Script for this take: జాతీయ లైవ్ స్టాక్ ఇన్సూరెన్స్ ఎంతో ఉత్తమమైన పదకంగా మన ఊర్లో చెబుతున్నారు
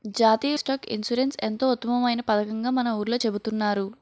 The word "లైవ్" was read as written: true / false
false